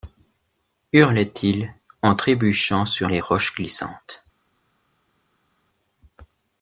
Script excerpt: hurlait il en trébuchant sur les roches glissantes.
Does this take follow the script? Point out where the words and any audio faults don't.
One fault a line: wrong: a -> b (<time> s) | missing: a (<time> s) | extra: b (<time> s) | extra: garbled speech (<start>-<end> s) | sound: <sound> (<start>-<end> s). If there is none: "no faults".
no faults